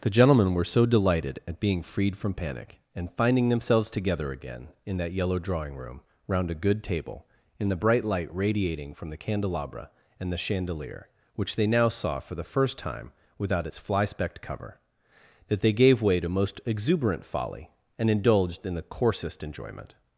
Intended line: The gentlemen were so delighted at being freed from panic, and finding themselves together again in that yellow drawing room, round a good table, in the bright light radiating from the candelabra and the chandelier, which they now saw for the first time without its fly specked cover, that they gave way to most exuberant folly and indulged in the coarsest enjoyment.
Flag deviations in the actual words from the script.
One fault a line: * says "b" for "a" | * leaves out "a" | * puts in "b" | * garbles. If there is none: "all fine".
all fine